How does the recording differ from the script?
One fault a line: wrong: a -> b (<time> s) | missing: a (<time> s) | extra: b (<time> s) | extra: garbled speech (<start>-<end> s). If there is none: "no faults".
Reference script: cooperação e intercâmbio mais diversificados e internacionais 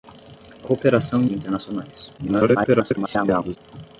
missing: intercâmbio mais diversificados (1.3 s)
extra: garbled speech (2.2-3.6 s)